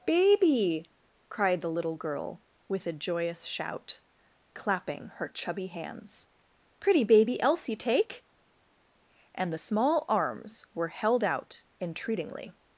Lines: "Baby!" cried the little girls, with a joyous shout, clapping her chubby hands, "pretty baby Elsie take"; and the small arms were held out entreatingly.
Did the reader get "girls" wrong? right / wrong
wrong